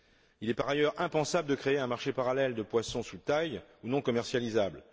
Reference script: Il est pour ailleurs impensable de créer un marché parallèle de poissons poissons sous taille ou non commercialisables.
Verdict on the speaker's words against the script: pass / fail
fail